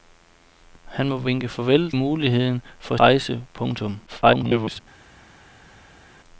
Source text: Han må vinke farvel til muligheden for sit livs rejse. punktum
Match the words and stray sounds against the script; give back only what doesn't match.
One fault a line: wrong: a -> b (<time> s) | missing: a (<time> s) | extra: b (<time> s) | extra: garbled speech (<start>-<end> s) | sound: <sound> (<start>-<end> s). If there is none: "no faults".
missing: til (1.9 s)
missing: sit livs (3.0 s)
extra: garbled speech (4.1-4.8 s)